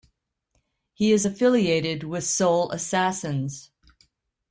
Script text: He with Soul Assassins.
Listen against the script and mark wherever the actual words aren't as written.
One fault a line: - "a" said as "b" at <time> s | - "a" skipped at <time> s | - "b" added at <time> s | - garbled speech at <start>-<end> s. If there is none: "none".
- "is affiliated" added at 1.1 s